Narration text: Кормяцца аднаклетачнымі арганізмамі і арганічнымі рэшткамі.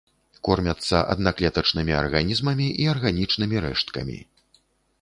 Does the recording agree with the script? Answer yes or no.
yes